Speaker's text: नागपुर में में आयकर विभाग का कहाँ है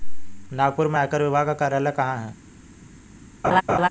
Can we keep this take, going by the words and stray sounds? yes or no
no